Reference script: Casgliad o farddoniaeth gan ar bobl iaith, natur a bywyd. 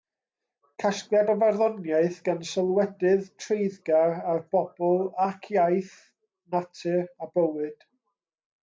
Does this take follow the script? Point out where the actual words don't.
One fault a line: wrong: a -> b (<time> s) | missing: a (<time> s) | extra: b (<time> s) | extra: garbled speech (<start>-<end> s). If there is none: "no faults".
extra: sylwedydd treiddgar (2.5 s)
extra: ac (5.3 s)